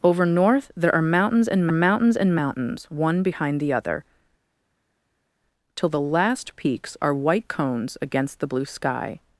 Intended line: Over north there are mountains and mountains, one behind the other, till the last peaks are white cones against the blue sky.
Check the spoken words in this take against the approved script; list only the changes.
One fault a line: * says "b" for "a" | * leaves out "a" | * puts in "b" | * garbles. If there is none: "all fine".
* puts in "and mountains"